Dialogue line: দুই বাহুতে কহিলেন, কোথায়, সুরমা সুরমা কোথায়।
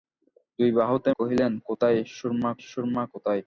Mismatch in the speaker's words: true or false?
false